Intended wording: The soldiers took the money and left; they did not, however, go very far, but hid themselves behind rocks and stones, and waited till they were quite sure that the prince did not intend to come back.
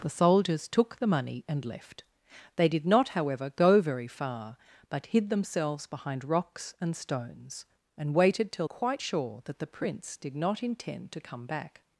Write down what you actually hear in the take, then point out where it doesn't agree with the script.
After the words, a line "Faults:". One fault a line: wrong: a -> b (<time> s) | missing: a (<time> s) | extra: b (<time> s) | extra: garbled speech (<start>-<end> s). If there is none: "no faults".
The soldiers took the money and left; they did not, however, go very far, but hid themselves behind rocks and stones, and waited till quite sure that the prince did not intend to come back.
Faults:
missing: they were (8.7 s)